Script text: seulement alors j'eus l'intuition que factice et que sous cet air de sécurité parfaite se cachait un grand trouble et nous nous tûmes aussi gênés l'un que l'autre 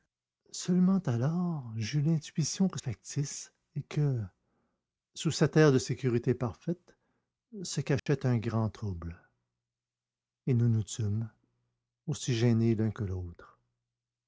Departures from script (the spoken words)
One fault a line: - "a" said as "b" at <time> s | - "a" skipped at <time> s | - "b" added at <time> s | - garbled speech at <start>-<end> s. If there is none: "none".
none